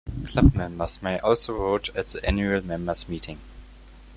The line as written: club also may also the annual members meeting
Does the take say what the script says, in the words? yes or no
no